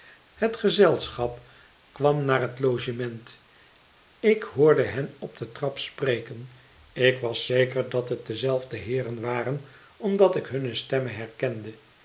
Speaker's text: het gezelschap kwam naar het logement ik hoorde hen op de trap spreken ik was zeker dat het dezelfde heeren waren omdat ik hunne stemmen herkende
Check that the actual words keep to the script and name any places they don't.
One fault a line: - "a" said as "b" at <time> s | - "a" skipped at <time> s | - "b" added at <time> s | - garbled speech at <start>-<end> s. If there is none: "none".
none